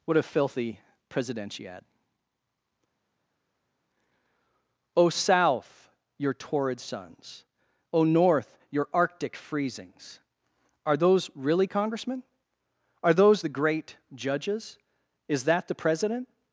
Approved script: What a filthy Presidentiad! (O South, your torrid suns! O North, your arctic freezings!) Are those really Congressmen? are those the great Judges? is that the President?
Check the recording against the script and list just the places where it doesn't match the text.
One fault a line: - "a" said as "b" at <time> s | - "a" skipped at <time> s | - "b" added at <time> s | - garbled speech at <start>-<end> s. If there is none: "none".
none